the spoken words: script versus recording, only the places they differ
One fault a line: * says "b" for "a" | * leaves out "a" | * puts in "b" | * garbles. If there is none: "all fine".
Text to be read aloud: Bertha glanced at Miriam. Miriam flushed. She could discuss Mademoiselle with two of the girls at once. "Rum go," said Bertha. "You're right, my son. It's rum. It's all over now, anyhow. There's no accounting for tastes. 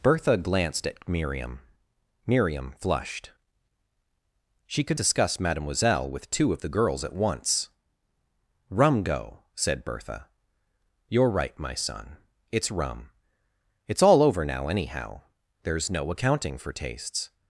all fine